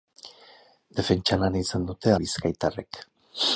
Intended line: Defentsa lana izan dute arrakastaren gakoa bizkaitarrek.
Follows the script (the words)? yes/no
no